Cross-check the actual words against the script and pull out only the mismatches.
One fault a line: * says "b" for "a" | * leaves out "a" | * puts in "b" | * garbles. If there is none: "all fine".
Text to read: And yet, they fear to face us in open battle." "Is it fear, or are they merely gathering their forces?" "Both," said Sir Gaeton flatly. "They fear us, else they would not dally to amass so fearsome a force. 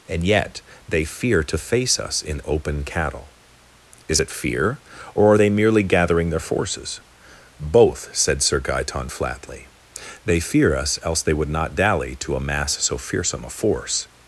* says "cattle" for "battle"